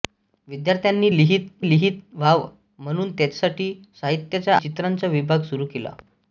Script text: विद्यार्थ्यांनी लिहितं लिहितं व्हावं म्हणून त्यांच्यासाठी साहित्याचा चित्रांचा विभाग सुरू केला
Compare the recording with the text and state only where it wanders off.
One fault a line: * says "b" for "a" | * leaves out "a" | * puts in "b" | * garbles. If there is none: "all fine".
all fine